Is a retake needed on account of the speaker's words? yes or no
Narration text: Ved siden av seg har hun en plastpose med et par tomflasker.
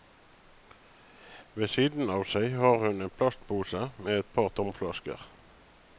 no